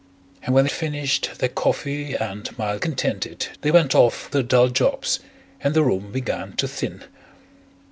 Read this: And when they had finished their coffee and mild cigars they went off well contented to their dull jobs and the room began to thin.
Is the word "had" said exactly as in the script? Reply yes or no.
no